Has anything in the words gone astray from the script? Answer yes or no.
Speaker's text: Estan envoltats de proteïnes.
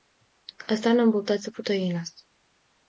no